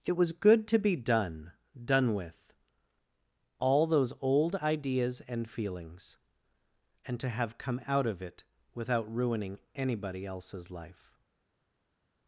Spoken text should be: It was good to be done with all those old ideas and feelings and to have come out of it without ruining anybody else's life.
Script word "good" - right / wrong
right